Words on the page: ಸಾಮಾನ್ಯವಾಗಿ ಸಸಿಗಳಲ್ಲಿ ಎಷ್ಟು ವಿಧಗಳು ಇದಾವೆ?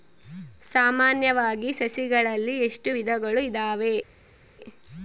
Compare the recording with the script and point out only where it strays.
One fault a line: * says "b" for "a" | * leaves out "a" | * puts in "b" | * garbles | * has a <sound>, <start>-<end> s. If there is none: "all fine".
all fine